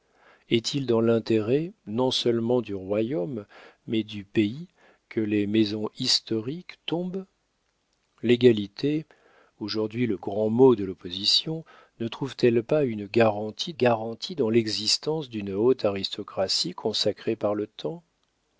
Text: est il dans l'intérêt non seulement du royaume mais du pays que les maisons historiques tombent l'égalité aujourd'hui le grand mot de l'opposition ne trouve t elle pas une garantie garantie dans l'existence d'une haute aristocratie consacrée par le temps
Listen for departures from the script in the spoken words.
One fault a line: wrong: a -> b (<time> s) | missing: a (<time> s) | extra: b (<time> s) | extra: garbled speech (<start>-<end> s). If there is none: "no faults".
no faults